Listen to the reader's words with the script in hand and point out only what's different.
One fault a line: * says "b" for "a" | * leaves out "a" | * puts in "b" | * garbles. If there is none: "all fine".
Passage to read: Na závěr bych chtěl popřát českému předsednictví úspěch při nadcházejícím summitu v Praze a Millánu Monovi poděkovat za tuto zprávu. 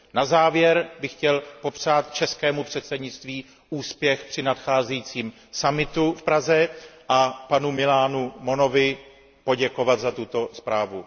* puts in "panu"